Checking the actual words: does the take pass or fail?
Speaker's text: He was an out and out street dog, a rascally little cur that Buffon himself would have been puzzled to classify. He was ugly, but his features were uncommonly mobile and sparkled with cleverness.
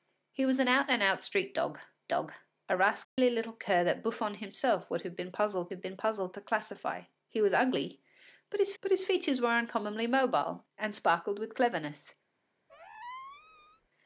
fail